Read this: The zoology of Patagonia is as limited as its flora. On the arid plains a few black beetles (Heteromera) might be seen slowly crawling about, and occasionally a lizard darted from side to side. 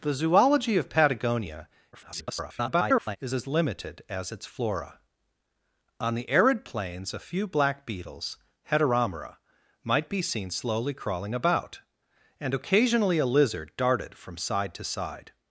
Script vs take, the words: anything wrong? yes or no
yes